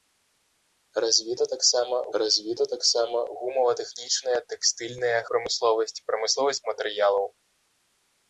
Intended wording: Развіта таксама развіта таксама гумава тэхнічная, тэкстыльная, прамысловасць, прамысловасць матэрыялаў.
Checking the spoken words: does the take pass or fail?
pass